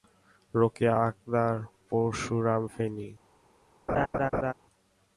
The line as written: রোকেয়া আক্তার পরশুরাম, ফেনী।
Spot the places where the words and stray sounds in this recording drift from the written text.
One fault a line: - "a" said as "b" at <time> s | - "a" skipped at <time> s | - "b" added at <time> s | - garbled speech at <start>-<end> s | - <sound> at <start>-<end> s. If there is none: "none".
- laugh at 3.9-4.5 s